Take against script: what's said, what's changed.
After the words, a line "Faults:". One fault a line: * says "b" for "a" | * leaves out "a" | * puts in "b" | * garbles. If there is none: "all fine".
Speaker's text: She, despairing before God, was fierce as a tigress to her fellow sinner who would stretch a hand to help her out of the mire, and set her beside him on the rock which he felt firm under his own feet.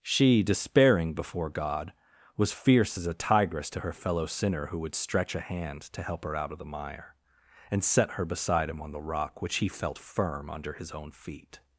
She, despairing before God, was fierce as a tigress to her fellow sinner who would stretch a hand to help her out of the mire, and set her beside him on the rock which he felt firm under his own feet.
Faults:
all fine